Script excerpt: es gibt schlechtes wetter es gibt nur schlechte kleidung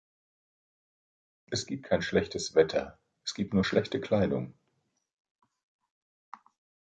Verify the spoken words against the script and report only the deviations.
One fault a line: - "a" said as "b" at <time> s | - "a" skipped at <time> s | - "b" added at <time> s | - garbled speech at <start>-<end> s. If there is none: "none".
- "kein" added at 1.8 s